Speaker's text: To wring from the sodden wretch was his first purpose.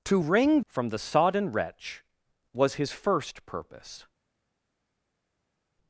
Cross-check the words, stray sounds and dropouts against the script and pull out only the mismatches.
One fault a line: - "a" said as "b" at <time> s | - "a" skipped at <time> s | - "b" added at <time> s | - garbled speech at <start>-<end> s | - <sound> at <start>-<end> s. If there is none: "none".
none